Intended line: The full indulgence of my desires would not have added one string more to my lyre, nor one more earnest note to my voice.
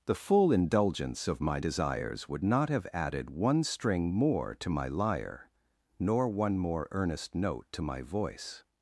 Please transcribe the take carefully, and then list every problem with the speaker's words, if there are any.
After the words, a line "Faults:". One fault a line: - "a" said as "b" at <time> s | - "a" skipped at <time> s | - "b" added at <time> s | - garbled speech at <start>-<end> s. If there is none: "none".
The full indulgence of my desires would not have added one string more to my lyre, nor one more earnest note to my voice.
Faults:
none